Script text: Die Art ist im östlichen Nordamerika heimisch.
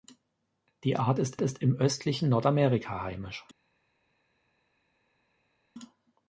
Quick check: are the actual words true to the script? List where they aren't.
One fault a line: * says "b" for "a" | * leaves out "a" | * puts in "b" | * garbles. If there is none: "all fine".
* puts in "ist"